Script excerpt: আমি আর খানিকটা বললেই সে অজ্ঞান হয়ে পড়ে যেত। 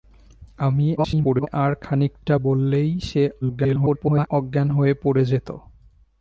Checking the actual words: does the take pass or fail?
fail